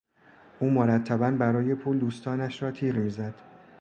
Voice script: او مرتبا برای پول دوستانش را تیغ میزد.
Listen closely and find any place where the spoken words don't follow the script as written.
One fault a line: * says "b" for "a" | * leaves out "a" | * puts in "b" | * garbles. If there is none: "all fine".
all fine